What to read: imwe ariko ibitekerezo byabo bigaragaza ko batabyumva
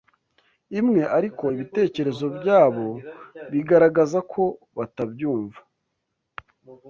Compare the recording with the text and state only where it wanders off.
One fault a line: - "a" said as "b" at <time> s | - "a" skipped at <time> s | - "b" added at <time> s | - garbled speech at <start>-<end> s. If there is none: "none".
none